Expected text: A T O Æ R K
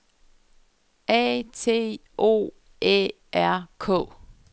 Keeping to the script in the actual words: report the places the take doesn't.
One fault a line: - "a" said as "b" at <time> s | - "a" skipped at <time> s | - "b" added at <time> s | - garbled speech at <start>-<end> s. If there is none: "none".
none